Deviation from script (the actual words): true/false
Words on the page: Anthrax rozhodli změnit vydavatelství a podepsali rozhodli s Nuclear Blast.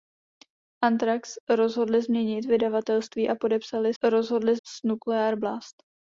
false